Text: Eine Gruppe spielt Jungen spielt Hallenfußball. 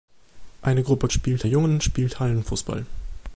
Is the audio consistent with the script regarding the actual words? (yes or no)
yes